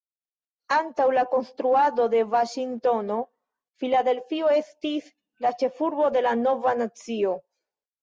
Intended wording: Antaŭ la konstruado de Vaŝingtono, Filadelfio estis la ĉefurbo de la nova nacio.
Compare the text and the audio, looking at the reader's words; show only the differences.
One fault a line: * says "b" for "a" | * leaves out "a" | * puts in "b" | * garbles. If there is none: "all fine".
all fine